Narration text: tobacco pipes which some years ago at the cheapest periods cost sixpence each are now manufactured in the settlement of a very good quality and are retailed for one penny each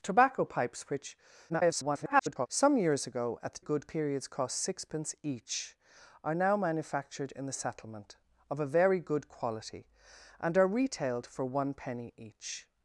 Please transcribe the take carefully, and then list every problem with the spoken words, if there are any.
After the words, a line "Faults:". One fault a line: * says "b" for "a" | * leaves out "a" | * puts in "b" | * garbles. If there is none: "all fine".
tobacco pipes which [garbled] some years ago at the good periods cost sixpence each are now manufactured in the settlement of a very good quality and are retailed for one penny each
Faults:
* garbles
* says "good" for "cheapest"